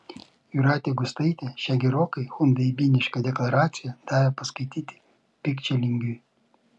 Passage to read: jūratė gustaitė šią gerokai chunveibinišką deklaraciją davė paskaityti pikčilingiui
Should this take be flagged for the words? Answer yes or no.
no